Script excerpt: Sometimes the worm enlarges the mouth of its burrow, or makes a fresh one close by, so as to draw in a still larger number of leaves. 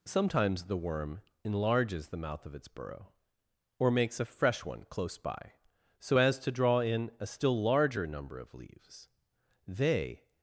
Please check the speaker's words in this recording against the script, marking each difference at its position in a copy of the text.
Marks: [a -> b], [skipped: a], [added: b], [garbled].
Sometimes the worm enlarges the mouth of its burrow, or makes a fresh one close by, so as to draw in a still larger number of leaves. [added: They]